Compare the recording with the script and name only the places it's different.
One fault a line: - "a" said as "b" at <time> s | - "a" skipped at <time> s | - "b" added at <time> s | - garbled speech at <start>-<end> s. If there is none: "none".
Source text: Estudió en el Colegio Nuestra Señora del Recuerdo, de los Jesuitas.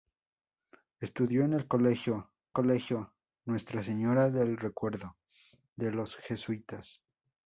- "Colegio" added at 2.5 s